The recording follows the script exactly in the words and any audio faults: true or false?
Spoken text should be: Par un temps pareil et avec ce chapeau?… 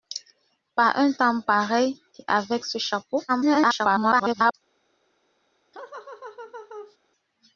false